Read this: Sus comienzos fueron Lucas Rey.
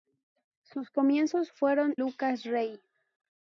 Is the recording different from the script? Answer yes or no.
no